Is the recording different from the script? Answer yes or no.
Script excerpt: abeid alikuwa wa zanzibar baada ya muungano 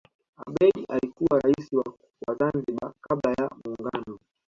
yes